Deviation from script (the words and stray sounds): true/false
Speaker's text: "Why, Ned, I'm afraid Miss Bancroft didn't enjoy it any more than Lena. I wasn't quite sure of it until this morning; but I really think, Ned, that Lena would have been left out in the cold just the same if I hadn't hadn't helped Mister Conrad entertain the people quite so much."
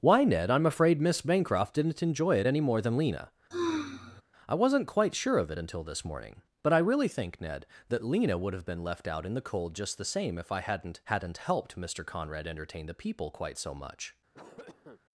true